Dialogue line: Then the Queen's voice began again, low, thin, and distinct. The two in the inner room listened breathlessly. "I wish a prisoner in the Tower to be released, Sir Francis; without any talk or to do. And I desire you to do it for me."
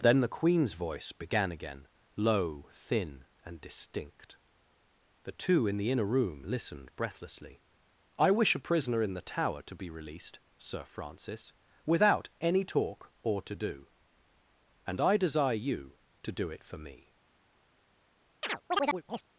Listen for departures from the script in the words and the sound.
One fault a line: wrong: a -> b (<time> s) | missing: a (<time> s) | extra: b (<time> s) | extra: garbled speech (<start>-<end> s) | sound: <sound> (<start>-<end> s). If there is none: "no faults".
sound: chirp (18.4-19.2 s)